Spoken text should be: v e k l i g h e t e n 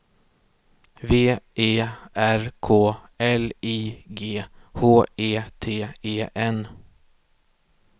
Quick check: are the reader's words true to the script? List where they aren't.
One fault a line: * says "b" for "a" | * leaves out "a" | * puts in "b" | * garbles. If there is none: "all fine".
* puts in "r"